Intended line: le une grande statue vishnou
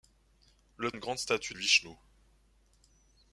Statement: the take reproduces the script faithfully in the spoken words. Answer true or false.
true